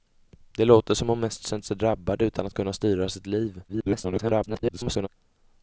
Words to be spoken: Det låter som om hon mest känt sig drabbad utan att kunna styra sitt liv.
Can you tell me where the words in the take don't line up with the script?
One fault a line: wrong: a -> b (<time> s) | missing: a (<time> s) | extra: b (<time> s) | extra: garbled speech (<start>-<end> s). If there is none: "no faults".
extra: garbled speech (3.7-5.1 s)